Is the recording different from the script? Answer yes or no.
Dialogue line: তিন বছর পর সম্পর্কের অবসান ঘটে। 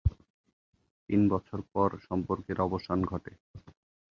no